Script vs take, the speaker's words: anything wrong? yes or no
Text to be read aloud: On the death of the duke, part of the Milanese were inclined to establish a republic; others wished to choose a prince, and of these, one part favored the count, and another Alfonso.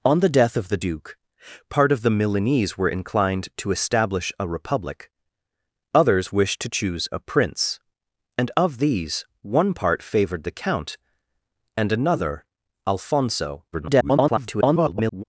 yes